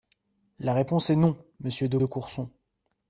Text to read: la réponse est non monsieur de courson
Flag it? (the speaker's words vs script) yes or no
yes